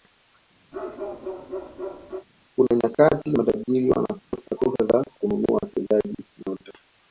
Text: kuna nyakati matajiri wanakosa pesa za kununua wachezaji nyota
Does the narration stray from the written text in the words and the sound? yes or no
yes